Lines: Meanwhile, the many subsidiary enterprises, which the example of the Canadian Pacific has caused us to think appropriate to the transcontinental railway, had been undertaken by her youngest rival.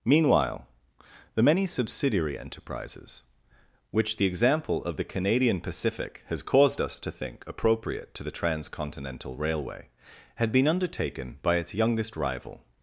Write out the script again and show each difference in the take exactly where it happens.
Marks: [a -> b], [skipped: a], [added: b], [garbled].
Meanwhile, the many subsidiary enterprises, which the example of the Canadian Pacific has caused us to think appropriate to the transcontinental railway, had been undertaken by [her -> its] youngest rival.